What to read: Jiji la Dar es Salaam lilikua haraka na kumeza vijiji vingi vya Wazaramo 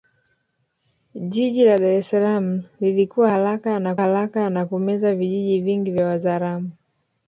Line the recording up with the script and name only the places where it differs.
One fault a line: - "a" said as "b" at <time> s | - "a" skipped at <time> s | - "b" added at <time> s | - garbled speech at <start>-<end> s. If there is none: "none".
- "haraka na" added at 4.0 s